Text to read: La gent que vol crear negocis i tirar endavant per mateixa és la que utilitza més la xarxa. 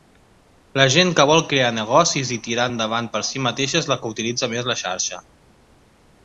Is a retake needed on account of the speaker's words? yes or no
yes